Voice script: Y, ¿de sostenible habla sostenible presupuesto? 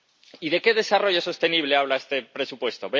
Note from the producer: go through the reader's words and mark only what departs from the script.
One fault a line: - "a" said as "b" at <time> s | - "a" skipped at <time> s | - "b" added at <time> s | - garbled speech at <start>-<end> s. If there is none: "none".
- "qué desarrollo" added at 0.6 s
- "sostenible" said as "este" at 2.0 s